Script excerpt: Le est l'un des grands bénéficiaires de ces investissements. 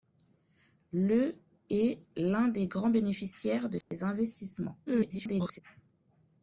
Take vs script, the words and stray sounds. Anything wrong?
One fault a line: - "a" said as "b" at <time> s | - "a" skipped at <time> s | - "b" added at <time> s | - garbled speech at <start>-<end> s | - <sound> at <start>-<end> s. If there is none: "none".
- dropout at 3.8-3.9 s
- garbled speech at 4.9-5.6 s